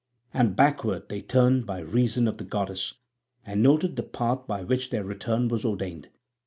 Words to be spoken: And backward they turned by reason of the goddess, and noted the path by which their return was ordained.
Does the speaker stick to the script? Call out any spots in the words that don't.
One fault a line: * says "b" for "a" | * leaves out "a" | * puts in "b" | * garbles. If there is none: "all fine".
all fine